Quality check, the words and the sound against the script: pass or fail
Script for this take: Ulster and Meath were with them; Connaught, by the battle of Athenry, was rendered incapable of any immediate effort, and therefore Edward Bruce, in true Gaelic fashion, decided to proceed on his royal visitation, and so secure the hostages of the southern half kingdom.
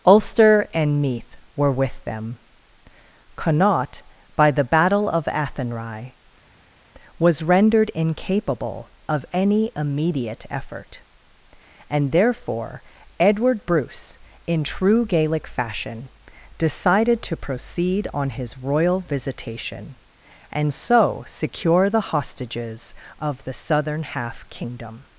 pass